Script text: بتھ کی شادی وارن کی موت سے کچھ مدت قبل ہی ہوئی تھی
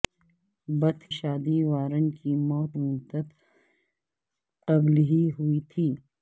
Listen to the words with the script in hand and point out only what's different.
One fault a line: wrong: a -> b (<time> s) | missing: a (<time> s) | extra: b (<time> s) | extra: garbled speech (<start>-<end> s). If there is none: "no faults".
missing: کی (1.0 s)
missing: سے کچھ (2.7 s)